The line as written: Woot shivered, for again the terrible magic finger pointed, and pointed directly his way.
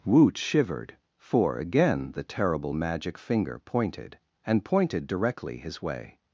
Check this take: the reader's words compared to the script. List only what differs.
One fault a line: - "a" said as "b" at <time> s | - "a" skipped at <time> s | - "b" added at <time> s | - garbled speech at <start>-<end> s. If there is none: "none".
none